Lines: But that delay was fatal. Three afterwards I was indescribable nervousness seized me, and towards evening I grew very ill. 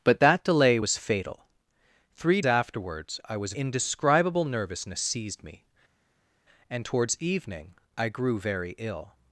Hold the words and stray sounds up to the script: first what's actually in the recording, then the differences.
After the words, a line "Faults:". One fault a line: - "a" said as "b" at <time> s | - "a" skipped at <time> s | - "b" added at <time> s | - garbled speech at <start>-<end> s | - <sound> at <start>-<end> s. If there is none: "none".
But that delay was fatal. Three afterwards I was indescribable nervousness seized me, and towards evening I grew very ill.
Faults:
none